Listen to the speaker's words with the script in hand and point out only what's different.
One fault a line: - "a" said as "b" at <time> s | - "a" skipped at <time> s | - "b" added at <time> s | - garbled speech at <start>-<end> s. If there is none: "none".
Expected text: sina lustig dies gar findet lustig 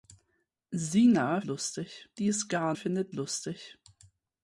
none